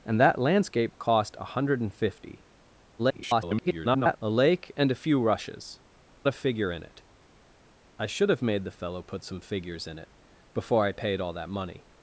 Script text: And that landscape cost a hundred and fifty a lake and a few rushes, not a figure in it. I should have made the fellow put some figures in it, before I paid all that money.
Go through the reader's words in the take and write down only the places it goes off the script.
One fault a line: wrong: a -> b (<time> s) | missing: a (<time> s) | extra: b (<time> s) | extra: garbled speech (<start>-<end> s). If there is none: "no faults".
extra: garbled speech (3.0-4.2 s)
missing: not (5.8 s)